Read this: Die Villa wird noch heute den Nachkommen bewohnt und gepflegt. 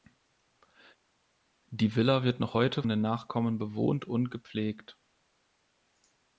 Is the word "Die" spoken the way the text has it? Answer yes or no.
yes